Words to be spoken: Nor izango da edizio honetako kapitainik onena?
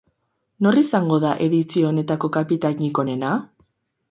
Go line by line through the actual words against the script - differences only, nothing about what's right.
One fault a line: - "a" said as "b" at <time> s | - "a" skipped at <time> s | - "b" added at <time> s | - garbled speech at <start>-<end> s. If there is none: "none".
none